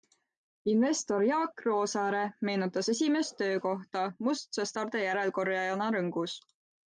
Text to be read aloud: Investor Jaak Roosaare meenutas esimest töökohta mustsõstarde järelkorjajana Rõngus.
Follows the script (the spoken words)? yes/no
yes